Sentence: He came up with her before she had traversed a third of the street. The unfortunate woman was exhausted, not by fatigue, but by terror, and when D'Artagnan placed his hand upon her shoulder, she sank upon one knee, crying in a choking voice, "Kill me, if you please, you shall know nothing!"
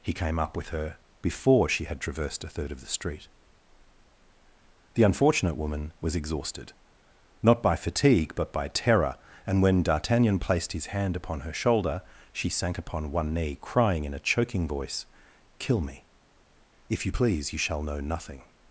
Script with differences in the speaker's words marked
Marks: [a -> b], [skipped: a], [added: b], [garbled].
He came up with her before she had traversed a third of the street. The unfortunate woman was exhausted, not by fatigue, but by terror, and when D'Artagnan placed his hand upon her shoulder, she sank upon one knee, crying in a choking voice, "Kill me, if you please, you shall know nothing!"